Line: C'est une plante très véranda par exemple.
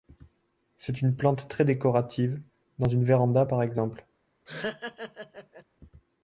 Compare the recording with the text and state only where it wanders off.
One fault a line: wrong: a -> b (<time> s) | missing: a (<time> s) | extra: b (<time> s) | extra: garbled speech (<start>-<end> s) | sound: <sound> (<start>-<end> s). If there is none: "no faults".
extra: décorative dans une (1.6 s)
sound: laugh (4.5-5.6 s)